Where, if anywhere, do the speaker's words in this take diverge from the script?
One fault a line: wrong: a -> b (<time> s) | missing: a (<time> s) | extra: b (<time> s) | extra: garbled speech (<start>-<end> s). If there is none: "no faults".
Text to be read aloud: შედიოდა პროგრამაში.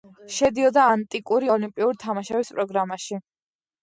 extra: ანტიკური ოლიმპიური თამაშების (0.9 s)